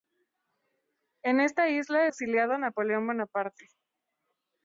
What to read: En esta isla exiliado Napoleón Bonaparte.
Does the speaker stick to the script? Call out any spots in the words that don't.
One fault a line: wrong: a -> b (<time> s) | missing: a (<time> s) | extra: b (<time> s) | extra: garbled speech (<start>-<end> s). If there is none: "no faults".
no faults